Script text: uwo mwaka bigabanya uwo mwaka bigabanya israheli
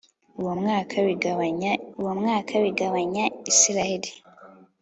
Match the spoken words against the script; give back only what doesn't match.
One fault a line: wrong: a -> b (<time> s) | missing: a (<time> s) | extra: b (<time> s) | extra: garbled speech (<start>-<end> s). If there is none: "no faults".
no faults